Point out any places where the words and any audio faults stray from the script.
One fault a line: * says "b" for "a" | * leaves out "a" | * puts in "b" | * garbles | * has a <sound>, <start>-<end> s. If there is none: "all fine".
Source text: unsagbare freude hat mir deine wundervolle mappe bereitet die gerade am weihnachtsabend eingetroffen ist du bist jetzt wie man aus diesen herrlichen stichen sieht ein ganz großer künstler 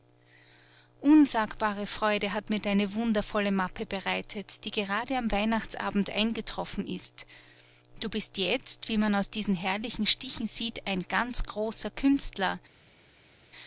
all fine